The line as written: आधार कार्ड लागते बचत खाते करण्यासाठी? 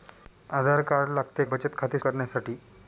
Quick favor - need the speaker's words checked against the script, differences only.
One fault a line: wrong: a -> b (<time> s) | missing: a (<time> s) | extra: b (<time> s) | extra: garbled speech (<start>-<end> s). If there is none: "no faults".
no faults